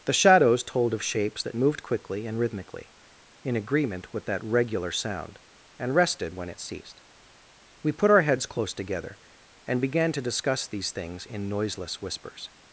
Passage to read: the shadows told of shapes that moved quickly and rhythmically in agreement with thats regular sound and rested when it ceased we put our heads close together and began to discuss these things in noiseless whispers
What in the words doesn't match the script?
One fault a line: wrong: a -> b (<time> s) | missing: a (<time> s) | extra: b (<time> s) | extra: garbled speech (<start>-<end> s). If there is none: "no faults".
wrong: thats -> that (4.3 s)